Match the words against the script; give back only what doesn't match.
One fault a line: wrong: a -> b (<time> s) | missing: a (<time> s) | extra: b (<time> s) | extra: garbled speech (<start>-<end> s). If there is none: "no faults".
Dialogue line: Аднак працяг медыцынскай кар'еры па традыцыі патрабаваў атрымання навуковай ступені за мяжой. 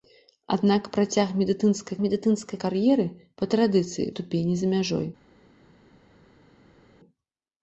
extra: медыцынскай (2.0 s)
missing: патрабаваў атрымання навуковай (4.1 s)